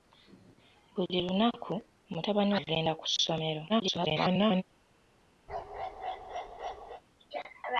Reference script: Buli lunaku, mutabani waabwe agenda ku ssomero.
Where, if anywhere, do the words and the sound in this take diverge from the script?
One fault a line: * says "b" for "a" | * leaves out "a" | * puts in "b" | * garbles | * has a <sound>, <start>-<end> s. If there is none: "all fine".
* leaves out "waabwe"
* garbles
* has a bark, 5.5-7.0 s